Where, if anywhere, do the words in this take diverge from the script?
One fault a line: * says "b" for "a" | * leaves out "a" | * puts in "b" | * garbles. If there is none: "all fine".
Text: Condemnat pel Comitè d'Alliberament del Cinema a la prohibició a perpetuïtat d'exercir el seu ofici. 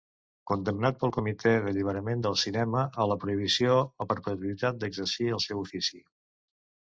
all fine